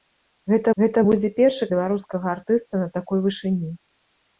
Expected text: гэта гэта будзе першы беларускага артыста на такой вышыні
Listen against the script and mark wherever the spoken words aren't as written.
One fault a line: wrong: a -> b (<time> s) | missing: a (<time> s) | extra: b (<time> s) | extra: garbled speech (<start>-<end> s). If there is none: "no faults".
no faults